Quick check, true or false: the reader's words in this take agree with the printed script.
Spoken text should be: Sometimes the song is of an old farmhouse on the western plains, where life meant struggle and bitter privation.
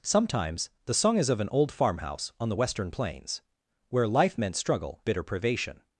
false